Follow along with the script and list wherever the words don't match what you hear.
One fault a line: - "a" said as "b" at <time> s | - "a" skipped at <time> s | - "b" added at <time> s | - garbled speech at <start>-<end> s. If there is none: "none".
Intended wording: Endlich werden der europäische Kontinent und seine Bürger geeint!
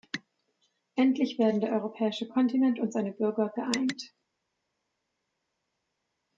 none